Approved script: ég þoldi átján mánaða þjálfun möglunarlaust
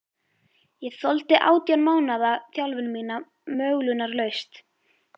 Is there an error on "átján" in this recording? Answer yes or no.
no